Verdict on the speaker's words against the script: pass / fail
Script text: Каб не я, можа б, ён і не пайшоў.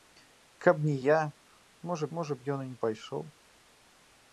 fail